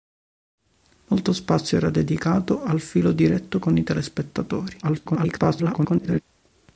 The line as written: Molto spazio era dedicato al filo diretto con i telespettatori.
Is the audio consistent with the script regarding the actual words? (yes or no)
no